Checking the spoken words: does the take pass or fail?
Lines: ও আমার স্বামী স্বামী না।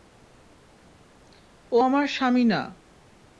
fail